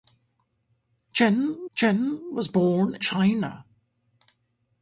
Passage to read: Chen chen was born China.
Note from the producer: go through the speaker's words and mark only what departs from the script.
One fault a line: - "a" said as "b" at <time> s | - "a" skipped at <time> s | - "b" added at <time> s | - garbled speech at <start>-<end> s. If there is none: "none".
none